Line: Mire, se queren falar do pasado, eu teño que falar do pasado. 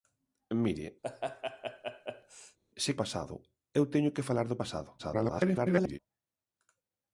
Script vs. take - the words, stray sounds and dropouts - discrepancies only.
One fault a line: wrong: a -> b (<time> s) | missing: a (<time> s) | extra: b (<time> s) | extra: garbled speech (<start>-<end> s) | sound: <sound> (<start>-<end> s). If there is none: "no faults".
sound: laugh (1.0-2.6 s)
missing: queren falar do (2.9 s)
extra: garbled speech (5.0-6.0 s)